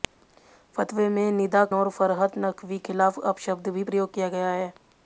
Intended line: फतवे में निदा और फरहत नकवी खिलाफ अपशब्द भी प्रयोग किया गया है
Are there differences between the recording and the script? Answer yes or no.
no